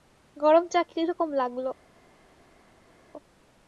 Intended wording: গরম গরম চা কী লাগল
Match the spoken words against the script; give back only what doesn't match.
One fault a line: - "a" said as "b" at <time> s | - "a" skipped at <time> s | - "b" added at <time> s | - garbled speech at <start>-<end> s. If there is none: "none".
- "গরম" skipped at 0.7 s
- "রকম" added at 1.1 s